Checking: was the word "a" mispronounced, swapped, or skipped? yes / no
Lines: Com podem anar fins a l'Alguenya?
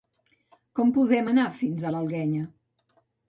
no